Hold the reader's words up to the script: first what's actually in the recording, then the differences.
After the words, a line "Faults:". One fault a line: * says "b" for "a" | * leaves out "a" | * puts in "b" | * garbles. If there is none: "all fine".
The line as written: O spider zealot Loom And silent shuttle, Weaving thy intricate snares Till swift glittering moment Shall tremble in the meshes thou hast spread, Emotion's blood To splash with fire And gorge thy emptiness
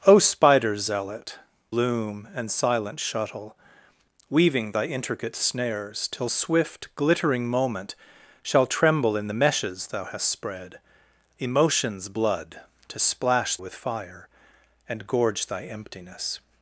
O spider zealot Loom And silent shuttle, Weaving thy intricate snares Till swift glittering moment Shall tremble in the meshes thou hast spread, Emotion's blood To splash with fire And gorge thy emptiness
Faults:
all fine